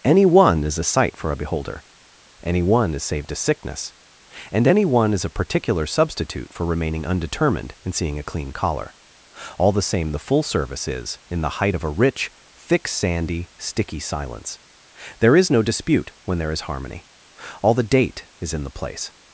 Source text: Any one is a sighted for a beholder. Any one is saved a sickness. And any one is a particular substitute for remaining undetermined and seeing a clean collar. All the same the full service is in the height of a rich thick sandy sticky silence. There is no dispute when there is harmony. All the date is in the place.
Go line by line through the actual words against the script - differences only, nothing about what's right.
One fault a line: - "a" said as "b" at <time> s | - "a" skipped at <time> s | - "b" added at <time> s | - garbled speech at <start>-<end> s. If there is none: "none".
- "sighted" said as "sight" at 0.8 s